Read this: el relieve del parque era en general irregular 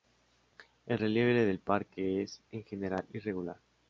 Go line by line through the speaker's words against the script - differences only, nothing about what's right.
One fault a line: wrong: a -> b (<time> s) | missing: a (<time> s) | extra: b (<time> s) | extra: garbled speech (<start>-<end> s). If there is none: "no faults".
wrong: era -> es (2.2 s)